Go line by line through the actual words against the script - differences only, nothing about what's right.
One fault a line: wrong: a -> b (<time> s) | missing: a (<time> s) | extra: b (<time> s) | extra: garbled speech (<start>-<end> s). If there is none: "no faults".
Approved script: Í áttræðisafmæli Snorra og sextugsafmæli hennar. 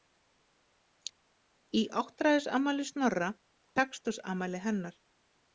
missing: og (3.3 s)